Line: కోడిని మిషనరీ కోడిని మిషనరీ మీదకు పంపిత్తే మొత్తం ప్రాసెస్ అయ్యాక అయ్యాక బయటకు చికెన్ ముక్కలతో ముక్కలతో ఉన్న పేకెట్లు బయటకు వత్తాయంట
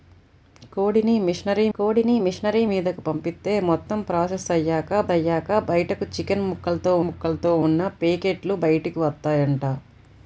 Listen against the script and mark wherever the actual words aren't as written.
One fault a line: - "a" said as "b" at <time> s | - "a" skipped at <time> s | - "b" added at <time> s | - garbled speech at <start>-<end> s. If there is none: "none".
none